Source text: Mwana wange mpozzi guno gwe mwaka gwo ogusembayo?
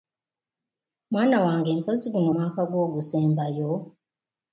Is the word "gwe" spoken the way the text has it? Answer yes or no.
no